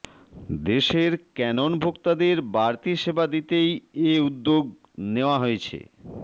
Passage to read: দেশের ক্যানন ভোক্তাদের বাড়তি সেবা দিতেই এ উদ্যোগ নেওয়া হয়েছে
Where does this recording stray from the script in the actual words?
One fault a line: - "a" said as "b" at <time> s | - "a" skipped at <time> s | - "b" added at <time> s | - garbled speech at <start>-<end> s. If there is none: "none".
none